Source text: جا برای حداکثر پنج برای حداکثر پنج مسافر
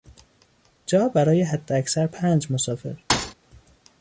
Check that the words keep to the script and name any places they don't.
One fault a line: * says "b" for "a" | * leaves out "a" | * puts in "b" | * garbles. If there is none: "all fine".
* leaves out "برای حداکثر پنج"